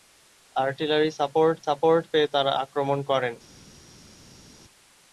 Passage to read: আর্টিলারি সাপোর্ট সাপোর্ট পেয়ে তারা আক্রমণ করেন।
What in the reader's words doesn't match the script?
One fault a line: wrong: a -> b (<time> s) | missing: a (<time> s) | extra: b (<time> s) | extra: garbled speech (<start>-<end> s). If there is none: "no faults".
no faults